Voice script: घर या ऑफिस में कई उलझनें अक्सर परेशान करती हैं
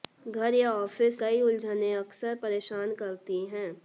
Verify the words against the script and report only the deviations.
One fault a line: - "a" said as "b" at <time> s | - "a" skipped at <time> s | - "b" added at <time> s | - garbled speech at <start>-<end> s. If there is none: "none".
- "में" skipped at 1.2 s